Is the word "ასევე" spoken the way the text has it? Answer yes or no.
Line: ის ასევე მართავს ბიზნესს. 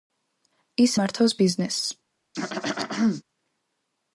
no